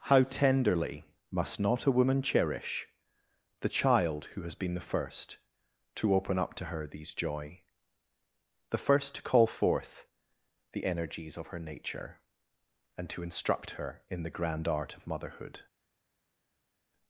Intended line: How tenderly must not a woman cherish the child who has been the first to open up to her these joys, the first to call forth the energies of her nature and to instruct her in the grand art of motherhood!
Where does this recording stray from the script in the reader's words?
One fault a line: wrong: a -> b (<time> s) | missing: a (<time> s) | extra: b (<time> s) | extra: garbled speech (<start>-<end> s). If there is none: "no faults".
wrong: joys -> joy (7.1 s)